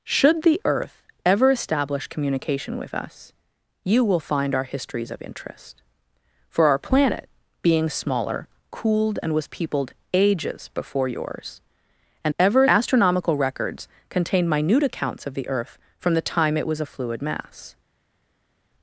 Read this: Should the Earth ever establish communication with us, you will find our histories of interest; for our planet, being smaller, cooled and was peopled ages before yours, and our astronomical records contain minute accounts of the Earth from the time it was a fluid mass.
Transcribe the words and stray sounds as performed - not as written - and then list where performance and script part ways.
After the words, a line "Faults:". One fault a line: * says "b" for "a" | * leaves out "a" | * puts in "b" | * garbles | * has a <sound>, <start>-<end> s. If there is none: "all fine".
Should the Earth ever establish communication with us, you will find our histories of interest; for our planet, being smaller, cooled and was peopled ages before yours, and ever astronomical records contain minute accounts of the Earth from the time it was a fluid mass.
Faults:
* says "ever" for "our"